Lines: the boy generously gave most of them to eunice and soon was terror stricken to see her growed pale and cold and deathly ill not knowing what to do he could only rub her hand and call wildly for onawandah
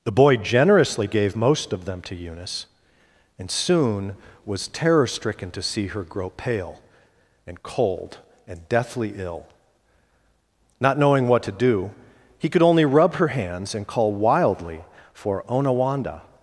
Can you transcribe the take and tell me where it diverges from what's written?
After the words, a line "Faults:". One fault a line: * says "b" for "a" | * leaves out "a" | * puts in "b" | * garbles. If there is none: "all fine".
the boy generously gave most of them to eunice and soon was terror stricken to see her grow pale and cold and deathly ill not knowing what to do he could only rub her hands and call wildly for onawandah
Faults:
* says "grow" for "growed"
* says "hands" for "hand"